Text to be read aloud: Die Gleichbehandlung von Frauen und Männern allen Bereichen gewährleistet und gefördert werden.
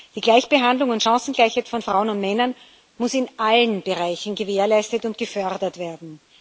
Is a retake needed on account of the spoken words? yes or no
yes